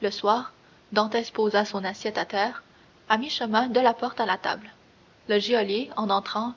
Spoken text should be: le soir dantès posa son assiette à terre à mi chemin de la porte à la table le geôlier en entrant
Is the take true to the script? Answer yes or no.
yes